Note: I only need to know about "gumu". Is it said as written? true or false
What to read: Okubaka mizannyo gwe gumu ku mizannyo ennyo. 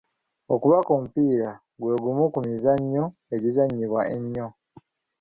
true